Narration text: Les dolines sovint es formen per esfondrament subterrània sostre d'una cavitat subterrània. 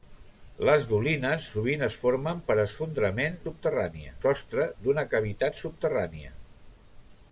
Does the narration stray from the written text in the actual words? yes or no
no